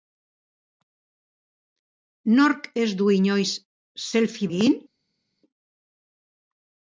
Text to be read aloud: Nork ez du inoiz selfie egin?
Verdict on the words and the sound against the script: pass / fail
pass